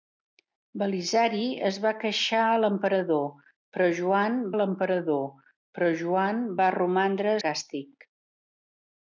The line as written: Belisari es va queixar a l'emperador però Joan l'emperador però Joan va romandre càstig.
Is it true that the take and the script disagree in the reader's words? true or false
false